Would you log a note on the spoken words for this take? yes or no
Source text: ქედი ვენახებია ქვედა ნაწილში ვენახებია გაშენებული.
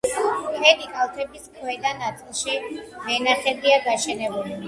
yes